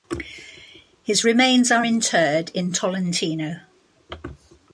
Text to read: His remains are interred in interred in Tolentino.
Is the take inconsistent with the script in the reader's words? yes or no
yes